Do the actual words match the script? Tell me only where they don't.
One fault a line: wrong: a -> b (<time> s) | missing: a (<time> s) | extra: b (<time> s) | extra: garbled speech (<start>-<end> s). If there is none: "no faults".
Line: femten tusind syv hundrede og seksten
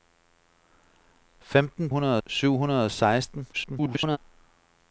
wrong: tusind -> hundrede (1.9 s)
extra: garbled speech (3.5-4.2 s)